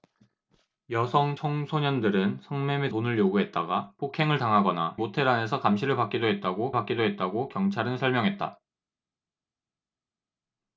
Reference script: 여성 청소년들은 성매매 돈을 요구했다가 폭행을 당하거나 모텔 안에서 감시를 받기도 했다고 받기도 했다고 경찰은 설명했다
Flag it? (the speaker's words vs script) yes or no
no